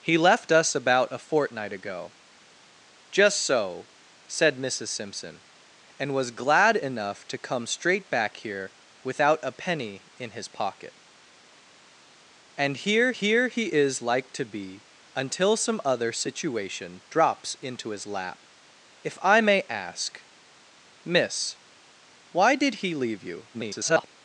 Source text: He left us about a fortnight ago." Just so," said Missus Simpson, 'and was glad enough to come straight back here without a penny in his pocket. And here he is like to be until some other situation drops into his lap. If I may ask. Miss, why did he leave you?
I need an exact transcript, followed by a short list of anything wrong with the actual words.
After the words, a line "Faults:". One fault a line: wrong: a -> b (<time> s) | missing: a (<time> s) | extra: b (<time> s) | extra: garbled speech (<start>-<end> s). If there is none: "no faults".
He left us about a fortnight ago." Just so," said Missus Simpson, 'and was glad enough to come straight back here without a penny in his pocket. And here here he is like to be until some other situation drops into his lap. If I may ask. Miss, why did he leave you? [garbled]
Faults:
extra: here (13.1 s)
extra: garbled speech (23.5-24.1 s)